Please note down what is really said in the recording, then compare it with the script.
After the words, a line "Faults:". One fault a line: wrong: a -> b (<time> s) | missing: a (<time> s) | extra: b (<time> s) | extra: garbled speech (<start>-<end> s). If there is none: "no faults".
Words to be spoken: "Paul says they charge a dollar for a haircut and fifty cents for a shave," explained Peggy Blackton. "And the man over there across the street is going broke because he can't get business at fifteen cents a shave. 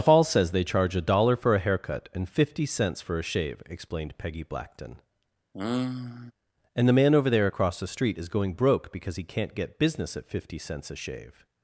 "Paul says they charge a dollar for a haircut and fifty cents for a shave," explained Peggy Blackton. "And the man over there across the street is going broke because he can't get business at fifty cents a shave.
Faults:
wrong: fifteen -> fifty (10.3 s)